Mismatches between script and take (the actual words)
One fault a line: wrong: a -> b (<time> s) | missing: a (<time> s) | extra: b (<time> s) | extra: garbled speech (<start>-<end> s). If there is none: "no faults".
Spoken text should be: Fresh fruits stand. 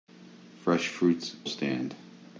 no faults